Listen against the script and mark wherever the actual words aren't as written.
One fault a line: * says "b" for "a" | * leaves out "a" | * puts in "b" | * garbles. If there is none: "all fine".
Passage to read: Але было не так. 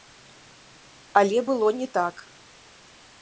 all fine